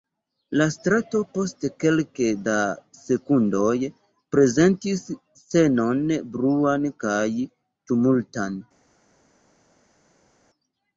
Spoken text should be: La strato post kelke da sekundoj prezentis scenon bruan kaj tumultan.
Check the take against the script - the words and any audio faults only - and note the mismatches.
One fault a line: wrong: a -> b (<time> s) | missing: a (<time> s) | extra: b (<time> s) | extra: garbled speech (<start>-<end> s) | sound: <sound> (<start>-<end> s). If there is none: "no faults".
no faults